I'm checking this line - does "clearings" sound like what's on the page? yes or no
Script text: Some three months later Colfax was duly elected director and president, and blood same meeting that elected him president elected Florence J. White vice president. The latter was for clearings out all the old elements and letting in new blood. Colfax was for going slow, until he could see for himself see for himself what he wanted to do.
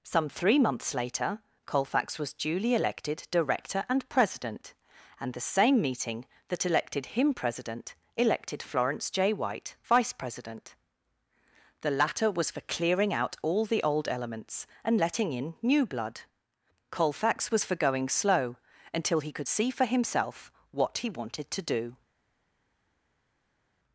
no